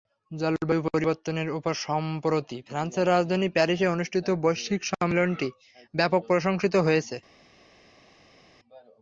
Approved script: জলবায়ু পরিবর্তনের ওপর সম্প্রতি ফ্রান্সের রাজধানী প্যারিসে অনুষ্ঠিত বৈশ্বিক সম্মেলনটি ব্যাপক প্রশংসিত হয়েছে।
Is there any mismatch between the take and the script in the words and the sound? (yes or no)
no